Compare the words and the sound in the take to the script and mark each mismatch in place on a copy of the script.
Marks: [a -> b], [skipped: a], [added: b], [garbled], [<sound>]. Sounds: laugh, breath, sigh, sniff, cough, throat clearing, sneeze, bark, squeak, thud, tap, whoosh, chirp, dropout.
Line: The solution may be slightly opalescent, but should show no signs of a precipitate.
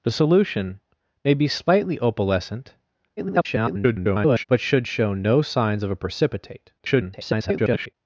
The solution may be slightly opalescent, [garbled] but should show no signs of a precipitate. [garbled]